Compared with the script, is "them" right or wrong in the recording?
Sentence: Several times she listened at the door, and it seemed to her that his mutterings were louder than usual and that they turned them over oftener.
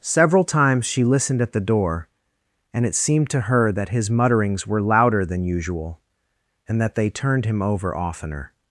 wrong